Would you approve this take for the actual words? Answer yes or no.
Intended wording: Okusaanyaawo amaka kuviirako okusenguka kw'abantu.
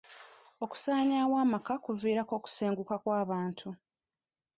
yes